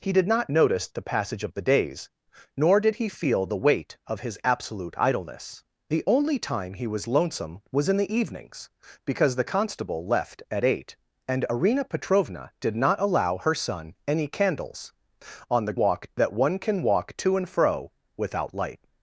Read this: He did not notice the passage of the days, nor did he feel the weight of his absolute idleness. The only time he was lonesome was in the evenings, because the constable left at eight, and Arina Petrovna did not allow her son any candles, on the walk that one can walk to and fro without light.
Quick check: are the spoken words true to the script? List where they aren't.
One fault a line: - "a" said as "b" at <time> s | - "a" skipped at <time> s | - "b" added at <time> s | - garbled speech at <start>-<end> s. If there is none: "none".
none